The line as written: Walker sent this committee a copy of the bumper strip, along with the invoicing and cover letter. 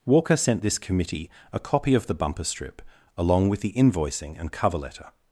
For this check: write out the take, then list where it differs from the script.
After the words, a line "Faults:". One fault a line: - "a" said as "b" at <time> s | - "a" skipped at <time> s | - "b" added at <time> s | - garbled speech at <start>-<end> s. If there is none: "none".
Walker sent this committee a copy of the bumper strip, along with the invoicing and cover letter.
Faults:
none